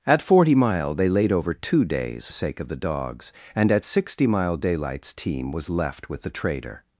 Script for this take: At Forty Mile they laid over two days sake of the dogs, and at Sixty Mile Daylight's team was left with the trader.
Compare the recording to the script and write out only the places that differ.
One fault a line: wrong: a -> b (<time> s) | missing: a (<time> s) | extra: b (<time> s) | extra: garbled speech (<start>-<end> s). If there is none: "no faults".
no faults